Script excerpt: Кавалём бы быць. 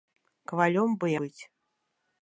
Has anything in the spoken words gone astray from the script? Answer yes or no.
no